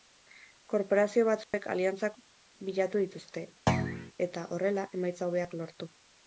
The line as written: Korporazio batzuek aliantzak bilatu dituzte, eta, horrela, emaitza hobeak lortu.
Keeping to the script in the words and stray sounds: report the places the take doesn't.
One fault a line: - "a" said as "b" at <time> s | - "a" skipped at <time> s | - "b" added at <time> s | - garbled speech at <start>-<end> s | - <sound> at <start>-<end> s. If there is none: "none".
- dropout at 1.4-1.5 s
- thud at 3.7-4.1 s